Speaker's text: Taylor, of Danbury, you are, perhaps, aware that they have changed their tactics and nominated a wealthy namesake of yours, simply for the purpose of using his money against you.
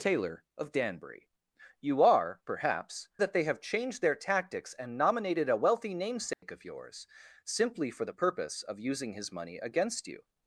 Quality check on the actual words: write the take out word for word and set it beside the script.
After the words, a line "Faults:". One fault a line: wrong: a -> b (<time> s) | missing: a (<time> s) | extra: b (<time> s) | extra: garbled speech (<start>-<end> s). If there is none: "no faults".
Taylor, of Danbury, you are, perhaps, that they have changed their tactics and nominated a wealthy namesake of yours, simply for the purpose of using his money against you.
Faults:
missing: aware (3.1 s)